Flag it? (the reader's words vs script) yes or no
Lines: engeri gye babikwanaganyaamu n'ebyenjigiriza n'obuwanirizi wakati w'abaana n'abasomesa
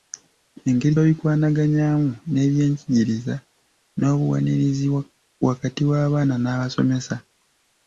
yes